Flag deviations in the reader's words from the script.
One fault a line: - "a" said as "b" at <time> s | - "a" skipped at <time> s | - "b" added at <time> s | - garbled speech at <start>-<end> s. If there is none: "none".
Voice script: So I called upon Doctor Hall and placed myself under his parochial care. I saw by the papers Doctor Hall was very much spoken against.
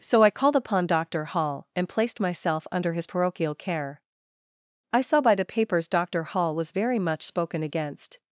none